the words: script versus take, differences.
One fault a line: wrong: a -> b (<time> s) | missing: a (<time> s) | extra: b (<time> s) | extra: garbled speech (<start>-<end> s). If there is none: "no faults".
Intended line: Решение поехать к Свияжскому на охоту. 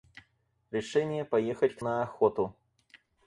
missing: Свияжскому (1.8 s)